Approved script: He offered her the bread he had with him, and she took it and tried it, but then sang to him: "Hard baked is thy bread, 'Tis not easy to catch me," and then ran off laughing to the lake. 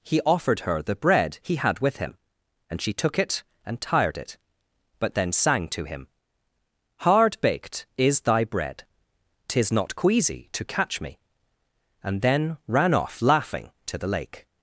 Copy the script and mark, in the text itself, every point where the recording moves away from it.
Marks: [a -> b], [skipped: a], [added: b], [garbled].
He offered her the bread he had with him, and she took it and [tried -> tired] it, but then sang to him: "Hard baked is thy bread, 'Tis not [easy -> queasy] to catch me," and then ran off laughing to the lake.